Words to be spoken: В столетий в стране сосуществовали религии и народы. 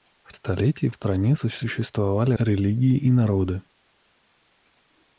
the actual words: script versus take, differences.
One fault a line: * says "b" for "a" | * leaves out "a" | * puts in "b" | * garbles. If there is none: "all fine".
all fine